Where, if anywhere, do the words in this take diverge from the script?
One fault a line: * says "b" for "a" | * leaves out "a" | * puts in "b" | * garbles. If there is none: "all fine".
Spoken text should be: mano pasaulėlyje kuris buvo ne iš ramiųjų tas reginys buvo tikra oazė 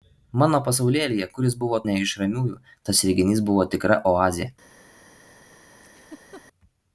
all fine